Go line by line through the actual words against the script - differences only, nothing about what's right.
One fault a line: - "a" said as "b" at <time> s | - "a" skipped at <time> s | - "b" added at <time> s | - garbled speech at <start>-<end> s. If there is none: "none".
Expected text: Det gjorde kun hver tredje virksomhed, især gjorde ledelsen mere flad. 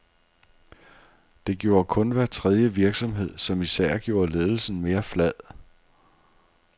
- "som" added at 3.4 s